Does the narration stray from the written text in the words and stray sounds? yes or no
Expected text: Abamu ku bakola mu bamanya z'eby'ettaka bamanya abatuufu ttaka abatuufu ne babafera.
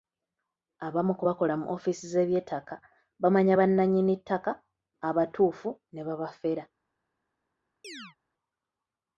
yes